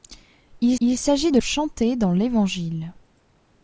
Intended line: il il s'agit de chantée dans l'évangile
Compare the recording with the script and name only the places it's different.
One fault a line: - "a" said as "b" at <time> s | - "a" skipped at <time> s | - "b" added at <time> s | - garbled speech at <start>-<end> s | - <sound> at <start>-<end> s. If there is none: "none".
none